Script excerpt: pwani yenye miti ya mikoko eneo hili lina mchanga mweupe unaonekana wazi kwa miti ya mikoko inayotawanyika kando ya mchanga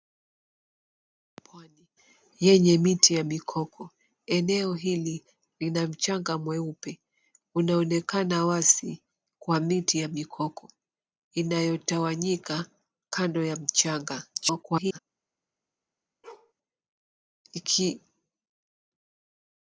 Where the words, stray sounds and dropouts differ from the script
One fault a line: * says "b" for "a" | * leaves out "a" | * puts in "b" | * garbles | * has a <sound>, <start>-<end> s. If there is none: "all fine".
* garbles
* has a bark, 16.2-16.5 s